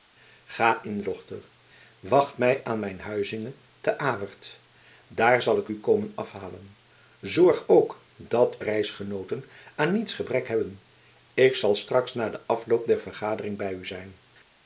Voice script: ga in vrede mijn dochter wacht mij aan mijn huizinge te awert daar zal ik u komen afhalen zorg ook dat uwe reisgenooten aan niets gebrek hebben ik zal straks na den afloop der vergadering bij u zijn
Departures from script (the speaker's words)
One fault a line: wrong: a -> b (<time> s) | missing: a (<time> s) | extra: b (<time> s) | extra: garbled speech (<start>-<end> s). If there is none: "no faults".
missing: vrede mijn (1.0 s)
missing: uwe (8.6 s)